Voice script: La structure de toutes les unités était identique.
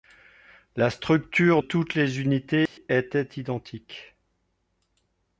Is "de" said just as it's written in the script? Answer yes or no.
no